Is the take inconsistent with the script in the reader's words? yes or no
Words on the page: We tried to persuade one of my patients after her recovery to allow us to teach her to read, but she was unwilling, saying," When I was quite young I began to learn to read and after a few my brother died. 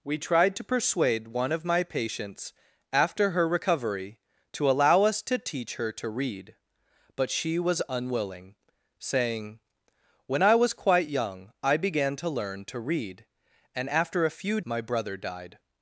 no